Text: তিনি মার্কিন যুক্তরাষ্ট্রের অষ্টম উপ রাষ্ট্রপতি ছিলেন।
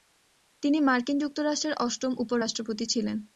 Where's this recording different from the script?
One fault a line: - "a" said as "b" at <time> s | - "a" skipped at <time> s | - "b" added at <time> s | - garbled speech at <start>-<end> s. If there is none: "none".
none